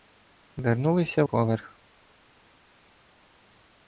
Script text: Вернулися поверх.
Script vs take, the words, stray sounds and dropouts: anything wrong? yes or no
no